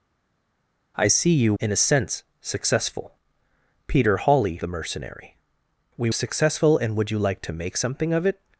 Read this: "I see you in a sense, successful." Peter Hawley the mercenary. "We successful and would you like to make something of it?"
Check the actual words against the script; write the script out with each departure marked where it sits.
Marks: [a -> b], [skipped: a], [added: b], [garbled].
"I see you in a sense, successful." Peter Hawley the mercenary. "We successful and would you like to make something of it?"